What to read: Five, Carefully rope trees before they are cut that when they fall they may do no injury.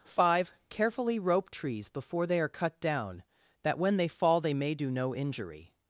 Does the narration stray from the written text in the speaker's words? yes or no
yes